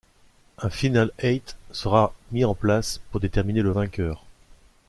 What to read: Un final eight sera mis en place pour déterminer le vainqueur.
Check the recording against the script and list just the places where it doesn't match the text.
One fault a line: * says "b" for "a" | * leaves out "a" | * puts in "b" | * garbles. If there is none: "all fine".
all fine